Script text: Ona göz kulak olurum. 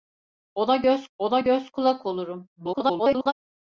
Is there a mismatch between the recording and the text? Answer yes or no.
yes